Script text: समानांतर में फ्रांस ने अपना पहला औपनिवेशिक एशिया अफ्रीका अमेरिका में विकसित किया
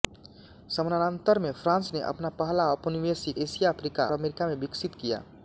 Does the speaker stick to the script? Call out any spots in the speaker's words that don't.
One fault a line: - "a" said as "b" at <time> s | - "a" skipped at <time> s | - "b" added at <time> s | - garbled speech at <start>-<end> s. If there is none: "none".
none